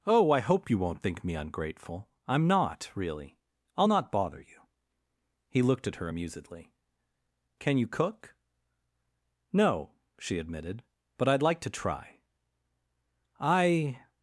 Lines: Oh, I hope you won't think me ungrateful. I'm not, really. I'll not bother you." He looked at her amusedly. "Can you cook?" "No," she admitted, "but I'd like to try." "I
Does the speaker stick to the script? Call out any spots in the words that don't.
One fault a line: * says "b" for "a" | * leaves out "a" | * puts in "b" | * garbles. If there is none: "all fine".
all fine